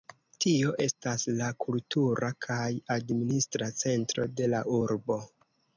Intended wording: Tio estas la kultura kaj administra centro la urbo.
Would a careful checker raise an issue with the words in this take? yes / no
yes